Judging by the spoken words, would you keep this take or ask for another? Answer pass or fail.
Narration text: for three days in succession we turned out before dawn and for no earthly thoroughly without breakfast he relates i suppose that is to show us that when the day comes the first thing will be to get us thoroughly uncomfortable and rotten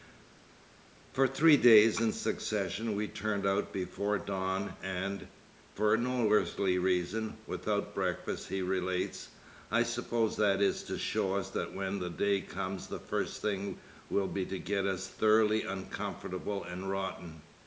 fail